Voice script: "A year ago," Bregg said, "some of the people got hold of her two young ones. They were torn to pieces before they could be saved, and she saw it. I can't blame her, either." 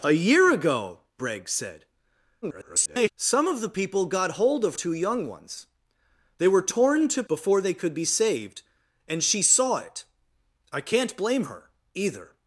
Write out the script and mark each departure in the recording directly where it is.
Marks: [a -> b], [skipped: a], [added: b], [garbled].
"A year ago," Bregg said, [garbled] "some of the people got hold of [skipped: her] two young ones. They were torn to [skipped: pieces] before they could be saved, and she saw it. I can't blame her, either."